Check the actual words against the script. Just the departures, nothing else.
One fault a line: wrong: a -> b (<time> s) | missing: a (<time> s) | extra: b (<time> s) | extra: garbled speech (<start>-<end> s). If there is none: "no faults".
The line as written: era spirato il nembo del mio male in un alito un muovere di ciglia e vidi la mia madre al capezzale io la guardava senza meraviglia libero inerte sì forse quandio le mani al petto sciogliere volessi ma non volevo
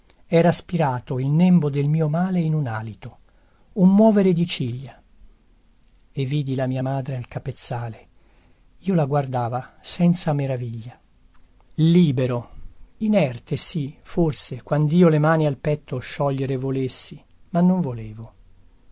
no faults